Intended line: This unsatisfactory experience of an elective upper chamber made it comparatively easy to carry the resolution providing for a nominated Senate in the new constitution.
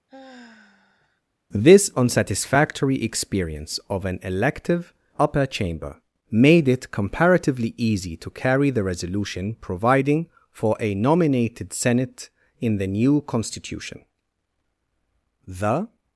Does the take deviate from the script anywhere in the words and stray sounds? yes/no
yes